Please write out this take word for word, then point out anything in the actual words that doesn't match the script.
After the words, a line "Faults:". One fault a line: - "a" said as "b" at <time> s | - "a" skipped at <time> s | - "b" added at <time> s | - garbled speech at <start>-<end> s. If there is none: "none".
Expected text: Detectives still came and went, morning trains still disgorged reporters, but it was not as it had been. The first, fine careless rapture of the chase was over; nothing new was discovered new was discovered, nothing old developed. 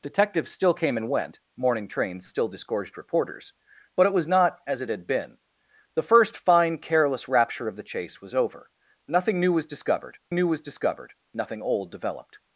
Detectives still came and went, morning trains still disgorged reporters, but it was not as it had been. The first, fine careless rapture of the chase was over; nothing new was discovered new was discovered, nothing old developed.
Faults:
none